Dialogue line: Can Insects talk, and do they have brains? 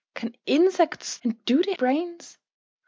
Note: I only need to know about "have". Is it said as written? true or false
false